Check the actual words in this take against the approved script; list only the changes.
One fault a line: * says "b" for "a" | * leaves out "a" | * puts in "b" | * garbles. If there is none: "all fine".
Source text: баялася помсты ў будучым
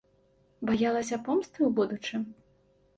all fine